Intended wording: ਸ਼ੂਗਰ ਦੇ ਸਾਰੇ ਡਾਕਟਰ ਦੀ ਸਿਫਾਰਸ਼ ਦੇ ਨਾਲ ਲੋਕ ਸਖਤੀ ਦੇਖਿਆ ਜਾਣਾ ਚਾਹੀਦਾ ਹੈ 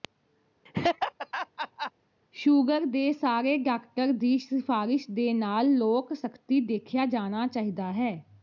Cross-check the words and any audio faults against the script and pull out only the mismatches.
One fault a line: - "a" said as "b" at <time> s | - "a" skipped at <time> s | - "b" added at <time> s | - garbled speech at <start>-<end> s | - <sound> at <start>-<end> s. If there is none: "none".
- laugh at 0.7-1.9 s